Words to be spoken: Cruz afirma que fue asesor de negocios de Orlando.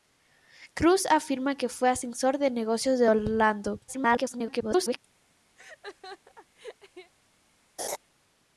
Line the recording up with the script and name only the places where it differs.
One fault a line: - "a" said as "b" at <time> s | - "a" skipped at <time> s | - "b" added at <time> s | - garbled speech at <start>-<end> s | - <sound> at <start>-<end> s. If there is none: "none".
- garbled speech at 3.9-5.0 s
- laugh at 5.6-7.1 s
- laugh at 7.8-8.0 s